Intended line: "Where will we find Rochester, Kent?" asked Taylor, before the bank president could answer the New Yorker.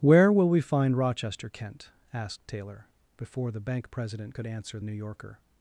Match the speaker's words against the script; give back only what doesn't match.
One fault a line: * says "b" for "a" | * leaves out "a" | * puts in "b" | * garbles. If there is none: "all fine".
* leaves out "the"